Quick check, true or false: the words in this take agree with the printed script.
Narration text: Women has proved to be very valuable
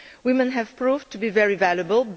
false